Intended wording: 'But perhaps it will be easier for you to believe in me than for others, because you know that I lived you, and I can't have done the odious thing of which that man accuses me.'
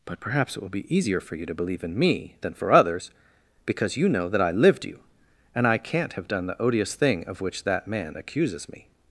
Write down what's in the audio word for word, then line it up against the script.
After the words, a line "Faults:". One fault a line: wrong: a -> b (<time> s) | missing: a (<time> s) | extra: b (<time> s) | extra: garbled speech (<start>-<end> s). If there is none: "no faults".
'But perhaps it will be easier for you to believe in me than for others, because you know that I lived you, and I can't have done the odious thing of which that man accuses me.'
Faults:
no faults